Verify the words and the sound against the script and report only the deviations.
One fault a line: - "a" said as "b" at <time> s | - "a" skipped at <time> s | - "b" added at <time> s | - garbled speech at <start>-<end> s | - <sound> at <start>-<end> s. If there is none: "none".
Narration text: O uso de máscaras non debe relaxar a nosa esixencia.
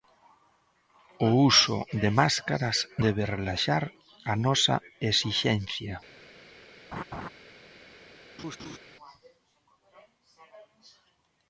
- "non" skipped at 2.8 s
- laugh at 6.9-7.3 s
- laugh at 8.4-8.8 s